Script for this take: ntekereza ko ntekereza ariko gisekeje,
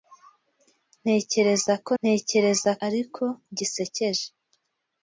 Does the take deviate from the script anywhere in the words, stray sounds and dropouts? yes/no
no